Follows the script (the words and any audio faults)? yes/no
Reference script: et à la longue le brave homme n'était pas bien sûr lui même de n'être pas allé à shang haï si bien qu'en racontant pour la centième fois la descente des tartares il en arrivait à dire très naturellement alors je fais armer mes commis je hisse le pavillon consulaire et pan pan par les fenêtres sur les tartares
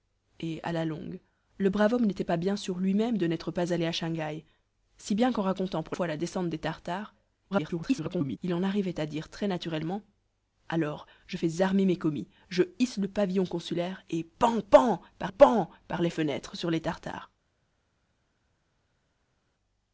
no